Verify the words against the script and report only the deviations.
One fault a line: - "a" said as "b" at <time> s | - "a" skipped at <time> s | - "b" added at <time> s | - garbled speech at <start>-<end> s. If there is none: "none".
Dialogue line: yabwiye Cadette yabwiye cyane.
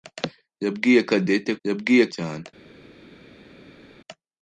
none